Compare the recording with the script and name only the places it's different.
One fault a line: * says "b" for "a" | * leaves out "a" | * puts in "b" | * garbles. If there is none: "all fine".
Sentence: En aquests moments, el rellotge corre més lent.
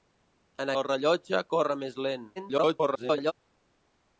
* leaves out "aquests moments"
* garbles